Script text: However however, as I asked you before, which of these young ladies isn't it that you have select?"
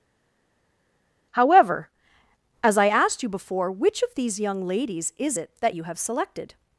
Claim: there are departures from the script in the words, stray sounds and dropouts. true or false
true